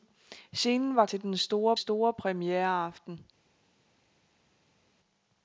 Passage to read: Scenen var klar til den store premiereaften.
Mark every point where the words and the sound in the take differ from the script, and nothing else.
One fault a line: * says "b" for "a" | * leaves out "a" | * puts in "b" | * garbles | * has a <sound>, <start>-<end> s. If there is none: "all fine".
* leaves out "klar"
* puts in "store"